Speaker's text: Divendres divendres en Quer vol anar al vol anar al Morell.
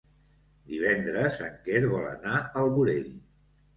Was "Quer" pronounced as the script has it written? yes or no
yes